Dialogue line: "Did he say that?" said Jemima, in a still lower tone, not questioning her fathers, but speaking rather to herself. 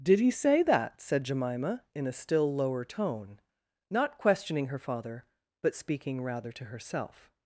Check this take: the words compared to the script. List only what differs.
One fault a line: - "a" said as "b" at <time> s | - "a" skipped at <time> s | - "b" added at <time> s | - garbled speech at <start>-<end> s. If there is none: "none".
- "fathers" said as "father" at 4.8 s